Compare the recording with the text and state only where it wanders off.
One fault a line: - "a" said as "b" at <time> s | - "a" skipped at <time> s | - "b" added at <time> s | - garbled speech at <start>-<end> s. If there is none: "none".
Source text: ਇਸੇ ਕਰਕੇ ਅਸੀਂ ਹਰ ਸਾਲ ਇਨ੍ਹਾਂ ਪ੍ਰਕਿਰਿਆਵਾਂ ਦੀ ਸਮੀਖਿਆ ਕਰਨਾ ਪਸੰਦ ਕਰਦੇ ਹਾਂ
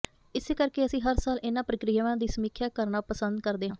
none